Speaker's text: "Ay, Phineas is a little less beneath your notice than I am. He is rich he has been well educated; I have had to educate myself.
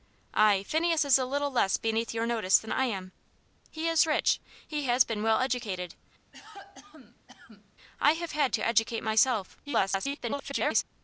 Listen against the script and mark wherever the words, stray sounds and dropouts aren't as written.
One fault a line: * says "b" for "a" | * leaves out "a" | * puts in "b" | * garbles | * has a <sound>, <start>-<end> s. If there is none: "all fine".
* has a cough, 6.3-7.7 s
* garbles